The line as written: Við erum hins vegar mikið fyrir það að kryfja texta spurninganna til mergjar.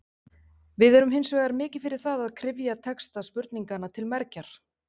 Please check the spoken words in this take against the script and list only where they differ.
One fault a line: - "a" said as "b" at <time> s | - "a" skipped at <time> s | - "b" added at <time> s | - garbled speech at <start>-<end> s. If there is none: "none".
none